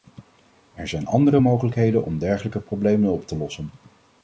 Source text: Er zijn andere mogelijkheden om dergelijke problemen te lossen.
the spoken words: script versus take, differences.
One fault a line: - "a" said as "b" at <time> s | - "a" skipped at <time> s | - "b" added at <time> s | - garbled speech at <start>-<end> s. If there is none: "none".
- "op" added at 3.1 s